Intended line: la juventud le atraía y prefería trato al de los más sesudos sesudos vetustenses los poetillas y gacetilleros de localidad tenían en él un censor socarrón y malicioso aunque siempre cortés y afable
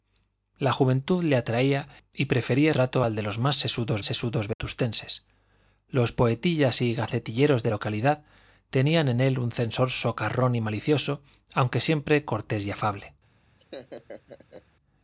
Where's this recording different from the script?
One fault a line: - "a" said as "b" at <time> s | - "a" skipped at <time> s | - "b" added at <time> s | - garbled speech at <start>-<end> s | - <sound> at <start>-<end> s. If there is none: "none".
- dropout at 4.5-4.6 s
- laugh at 13.6-14.7 s